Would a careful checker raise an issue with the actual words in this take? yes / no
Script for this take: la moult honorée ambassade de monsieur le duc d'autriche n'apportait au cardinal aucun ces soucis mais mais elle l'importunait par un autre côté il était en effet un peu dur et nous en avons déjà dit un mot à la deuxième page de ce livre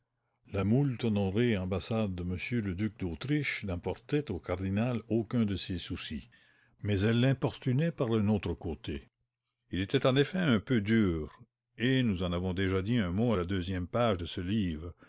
yes